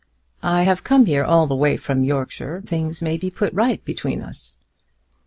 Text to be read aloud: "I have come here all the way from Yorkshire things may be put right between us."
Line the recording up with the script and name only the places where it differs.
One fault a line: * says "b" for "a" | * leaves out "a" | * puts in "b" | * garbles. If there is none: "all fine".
all fine